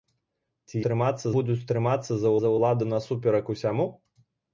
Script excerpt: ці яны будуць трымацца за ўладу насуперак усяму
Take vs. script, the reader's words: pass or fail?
fail